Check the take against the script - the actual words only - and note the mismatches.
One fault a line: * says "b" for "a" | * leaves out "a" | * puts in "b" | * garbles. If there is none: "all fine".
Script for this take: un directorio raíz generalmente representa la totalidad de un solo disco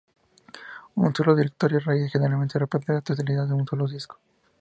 * puts in "solo"